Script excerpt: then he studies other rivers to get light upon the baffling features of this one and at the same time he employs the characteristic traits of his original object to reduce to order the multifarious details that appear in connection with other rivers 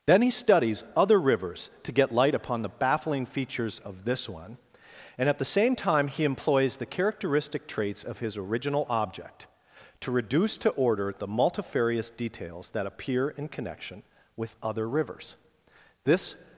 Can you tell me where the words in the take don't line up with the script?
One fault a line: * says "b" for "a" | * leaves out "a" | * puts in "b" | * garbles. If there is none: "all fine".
* puts in "this"